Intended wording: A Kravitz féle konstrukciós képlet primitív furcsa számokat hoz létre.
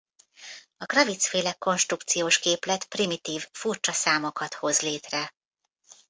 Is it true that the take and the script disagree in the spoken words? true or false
false